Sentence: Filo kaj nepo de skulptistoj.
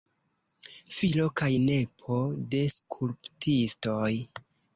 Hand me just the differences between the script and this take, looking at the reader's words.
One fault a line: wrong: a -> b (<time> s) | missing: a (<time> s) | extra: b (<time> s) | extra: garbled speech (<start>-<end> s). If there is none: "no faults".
no faults